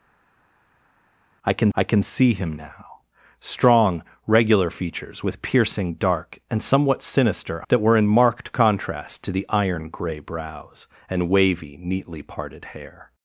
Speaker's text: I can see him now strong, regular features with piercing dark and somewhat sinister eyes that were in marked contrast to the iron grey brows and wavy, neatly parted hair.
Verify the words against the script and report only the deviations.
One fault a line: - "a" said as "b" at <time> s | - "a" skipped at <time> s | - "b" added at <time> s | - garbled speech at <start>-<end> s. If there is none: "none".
- "I can" added at 1.7 s
- "eyes" skipped at 7.6 s